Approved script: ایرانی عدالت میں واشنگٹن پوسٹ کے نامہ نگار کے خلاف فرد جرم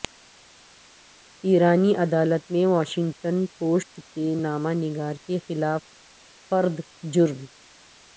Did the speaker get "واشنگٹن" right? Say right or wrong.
right